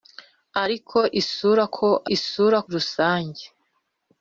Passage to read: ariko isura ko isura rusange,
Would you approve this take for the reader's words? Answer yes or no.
yes